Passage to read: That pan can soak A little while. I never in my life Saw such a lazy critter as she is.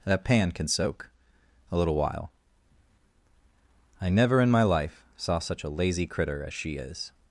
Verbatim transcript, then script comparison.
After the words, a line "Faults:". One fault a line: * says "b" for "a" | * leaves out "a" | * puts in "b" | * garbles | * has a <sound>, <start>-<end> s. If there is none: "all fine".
That pan can soak A little while. I never in my life Saw such a lazy critter as she is.
Faults:
all fine